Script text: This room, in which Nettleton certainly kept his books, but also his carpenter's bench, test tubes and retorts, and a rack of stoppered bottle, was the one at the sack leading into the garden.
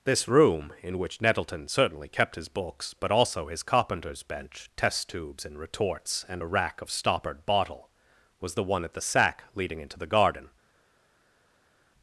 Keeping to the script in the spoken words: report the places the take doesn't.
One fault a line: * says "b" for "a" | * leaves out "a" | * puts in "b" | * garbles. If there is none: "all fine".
all fine